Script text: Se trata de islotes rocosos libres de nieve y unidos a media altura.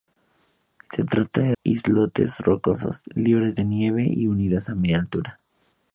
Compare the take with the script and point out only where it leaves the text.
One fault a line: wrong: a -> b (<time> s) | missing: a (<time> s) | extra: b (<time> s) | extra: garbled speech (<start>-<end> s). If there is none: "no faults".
no faults